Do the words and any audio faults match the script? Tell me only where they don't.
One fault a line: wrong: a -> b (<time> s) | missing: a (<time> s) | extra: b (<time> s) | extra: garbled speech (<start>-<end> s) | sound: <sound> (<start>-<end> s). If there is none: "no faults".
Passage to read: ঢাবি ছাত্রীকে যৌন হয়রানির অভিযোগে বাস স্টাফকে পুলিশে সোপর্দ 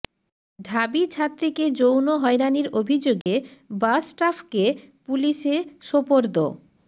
sound: dropout (3.2-3.3 s)